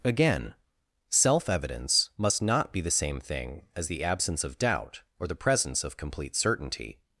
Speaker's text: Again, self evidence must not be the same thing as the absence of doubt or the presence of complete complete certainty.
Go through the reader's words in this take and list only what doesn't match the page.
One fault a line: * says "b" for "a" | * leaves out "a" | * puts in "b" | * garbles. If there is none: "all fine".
* leaves out "complete"